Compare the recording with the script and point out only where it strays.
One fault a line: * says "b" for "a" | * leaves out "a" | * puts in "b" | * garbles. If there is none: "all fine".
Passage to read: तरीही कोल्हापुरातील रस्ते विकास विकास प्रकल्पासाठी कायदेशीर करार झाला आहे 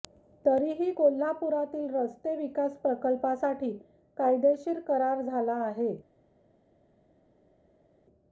* leaves out "विकास"